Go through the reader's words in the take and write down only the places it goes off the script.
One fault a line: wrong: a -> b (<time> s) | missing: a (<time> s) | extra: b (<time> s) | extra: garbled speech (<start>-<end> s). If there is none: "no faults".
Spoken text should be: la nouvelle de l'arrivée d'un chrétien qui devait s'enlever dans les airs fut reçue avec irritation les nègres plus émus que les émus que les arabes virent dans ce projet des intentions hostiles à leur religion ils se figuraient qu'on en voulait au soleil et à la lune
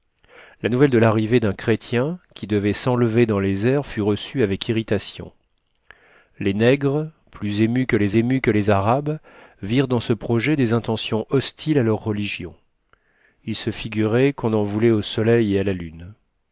no faults